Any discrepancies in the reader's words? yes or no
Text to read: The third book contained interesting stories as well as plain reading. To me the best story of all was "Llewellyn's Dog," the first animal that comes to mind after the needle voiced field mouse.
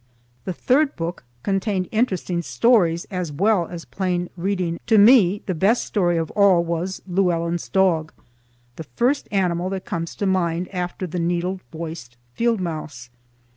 no